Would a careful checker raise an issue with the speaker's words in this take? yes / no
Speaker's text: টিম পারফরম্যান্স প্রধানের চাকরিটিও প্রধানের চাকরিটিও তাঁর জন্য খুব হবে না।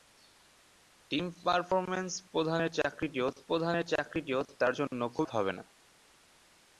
no